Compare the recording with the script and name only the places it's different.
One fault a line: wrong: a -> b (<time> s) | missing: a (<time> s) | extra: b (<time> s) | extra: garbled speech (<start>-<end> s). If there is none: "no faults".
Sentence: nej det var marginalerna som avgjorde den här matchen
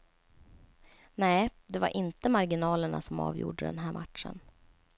extra: inte (2.0 s)